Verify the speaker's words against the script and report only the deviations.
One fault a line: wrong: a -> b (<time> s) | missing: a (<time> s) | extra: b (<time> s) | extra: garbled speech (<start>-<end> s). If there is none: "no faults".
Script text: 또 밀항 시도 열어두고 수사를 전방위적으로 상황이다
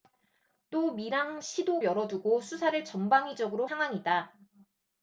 no faults